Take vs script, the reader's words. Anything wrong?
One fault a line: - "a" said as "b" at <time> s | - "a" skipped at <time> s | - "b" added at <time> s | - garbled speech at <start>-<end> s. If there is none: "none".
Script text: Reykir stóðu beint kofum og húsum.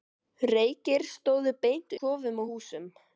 none